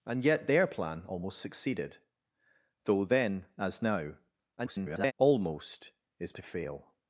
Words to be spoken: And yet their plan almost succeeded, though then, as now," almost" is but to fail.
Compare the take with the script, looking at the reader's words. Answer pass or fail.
fail